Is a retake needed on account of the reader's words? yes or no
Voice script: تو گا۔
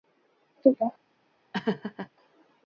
no